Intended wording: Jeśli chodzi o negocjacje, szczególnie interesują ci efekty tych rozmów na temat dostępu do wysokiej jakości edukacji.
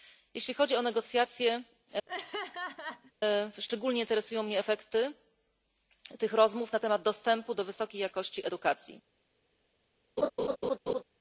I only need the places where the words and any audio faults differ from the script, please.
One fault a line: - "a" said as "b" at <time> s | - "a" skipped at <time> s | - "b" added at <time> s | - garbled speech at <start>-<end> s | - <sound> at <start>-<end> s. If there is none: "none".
- laugh at 2.1-3.1 s
- "ci" said as "mnie" at 4.4 s
- laugh at 10.2-11.0 s